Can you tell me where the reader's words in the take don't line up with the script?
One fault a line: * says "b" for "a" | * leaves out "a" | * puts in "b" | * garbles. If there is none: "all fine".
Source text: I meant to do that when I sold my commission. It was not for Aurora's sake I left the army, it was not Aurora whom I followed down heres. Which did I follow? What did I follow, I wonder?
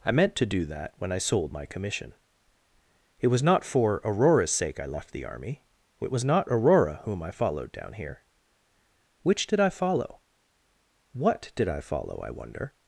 * says "here" for "heres"